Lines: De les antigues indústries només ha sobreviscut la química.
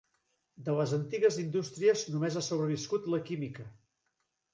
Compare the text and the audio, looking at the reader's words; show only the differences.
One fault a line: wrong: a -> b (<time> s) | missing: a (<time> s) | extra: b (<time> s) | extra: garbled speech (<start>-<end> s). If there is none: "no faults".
no faults